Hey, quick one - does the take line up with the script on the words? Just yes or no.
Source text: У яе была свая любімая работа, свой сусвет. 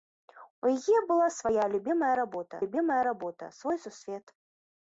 no